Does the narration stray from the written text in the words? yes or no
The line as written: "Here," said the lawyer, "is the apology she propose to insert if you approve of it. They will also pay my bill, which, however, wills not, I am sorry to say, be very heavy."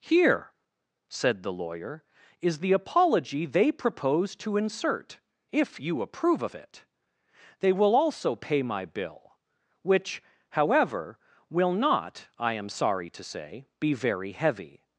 yes